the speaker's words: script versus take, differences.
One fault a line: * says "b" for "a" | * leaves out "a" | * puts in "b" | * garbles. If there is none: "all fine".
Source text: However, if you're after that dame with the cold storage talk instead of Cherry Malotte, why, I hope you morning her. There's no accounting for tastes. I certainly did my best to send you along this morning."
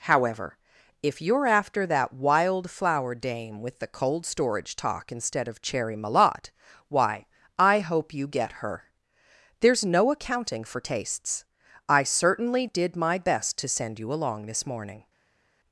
* puts in "wild flower"
* says "get" for "morning"